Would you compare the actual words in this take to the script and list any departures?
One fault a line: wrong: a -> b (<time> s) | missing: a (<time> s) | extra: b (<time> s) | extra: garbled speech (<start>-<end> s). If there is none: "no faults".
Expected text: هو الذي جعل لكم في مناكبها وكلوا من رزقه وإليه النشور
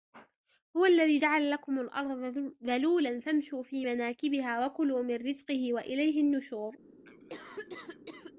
extra: الأرض ذلولا فامشوا (1.8 s)